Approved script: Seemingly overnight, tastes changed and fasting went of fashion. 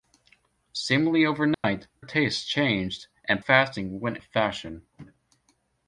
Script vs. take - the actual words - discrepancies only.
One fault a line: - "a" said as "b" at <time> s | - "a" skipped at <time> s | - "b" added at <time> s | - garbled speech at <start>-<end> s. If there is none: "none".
none